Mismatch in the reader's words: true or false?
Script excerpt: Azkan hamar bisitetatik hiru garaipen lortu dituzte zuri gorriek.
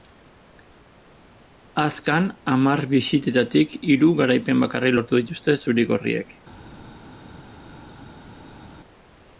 true